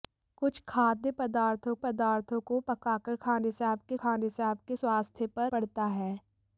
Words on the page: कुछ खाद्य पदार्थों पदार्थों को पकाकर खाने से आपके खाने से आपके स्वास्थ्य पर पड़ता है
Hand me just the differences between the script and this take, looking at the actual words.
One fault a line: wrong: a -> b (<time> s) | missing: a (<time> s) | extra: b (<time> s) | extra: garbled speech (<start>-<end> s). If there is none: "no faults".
no faults